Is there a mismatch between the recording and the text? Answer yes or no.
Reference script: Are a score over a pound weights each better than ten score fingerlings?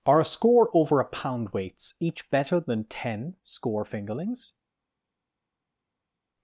no